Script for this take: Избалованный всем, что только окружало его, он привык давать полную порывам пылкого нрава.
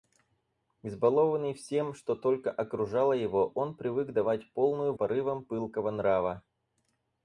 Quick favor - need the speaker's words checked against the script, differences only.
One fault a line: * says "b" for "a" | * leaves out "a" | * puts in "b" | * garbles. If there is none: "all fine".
all fine